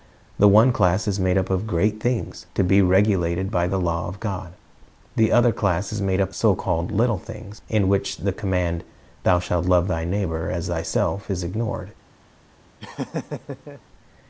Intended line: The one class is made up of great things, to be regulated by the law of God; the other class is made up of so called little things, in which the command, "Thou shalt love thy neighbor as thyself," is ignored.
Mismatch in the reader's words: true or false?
true